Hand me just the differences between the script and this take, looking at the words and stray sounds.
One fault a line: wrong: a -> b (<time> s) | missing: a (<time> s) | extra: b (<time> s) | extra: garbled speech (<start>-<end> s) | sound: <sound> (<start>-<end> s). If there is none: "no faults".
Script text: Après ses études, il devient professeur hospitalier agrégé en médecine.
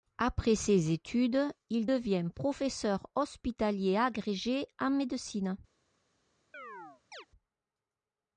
sound: chirp (6.5-7.3 s)